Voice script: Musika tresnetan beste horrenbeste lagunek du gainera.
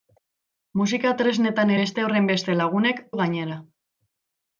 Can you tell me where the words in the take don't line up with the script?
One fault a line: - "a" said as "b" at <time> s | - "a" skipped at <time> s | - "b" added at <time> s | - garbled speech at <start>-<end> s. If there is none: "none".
none